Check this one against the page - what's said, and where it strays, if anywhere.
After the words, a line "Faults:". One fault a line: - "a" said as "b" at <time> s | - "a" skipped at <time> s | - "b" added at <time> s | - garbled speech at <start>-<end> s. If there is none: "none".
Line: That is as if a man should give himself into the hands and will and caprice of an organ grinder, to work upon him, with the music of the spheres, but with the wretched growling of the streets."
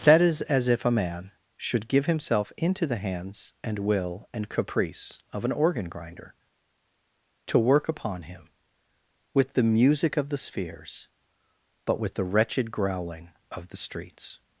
That is as if a man should give himself into the hands and will and caprice of an organ grinder, to work upon him, with the music of the spheres, but with the wretched growling of the streets."
Faults:
none